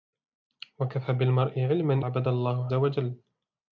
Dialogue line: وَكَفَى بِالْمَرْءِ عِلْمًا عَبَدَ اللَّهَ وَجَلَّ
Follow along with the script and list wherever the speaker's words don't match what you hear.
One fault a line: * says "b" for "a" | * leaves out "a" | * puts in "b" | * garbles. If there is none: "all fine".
all fine